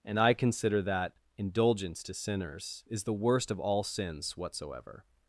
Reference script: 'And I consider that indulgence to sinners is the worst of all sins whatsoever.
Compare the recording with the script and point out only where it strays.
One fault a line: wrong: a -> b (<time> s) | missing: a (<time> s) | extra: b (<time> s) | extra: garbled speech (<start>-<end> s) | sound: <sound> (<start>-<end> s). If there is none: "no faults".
no faults